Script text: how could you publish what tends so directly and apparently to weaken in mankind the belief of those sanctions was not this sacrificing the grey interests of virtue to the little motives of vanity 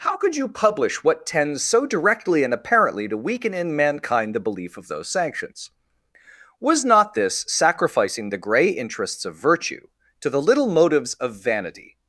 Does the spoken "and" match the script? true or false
true